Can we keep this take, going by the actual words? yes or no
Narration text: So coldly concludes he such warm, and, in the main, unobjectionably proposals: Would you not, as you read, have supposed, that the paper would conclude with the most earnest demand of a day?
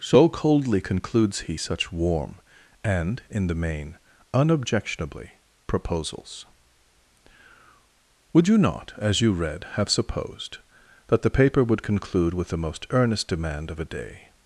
yes